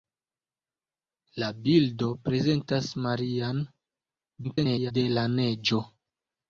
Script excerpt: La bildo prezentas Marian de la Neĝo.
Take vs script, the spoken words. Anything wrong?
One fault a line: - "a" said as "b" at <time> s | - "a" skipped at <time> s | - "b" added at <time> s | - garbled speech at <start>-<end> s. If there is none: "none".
- garbled speech at 4.4-4.9 s